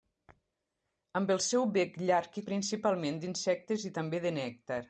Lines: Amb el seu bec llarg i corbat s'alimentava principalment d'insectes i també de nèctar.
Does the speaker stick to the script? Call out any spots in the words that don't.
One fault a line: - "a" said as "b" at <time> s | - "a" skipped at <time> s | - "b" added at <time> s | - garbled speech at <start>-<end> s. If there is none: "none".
- "corbat s'alimentava" skipped at 2.4 s